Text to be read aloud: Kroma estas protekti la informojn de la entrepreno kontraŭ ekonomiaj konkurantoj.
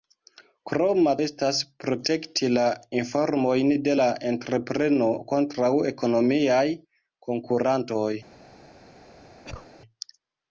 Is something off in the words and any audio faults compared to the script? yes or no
yes